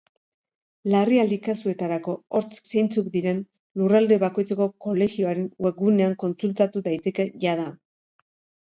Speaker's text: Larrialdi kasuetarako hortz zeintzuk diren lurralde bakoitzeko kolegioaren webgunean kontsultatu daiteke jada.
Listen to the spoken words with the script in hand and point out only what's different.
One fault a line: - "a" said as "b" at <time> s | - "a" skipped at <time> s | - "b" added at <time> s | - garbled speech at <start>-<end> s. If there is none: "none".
none